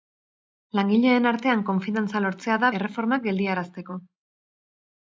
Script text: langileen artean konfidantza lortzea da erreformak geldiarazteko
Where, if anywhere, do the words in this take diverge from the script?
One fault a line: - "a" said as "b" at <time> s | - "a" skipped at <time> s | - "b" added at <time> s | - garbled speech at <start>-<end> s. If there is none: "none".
none